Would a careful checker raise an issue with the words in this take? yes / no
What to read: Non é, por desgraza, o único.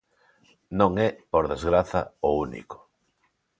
no